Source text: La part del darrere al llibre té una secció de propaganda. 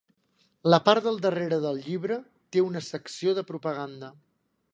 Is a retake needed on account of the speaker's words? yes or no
yes